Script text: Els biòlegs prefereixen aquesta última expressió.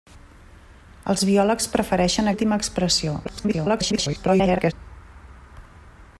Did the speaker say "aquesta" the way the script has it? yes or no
no